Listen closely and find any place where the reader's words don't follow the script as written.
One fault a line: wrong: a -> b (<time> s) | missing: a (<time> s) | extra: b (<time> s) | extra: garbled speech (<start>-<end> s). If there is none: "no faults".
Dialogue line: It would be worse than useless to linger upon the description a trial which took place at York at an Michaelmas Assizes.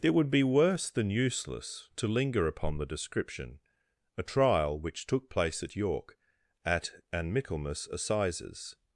no faults